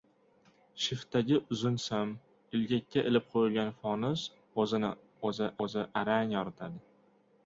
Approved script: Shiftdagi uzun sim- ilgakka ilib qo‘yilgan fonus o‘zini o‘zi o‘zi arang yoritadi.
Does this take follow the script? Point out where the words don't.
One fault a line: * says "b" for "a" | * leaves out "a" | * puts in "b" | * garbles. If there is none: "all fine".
all fine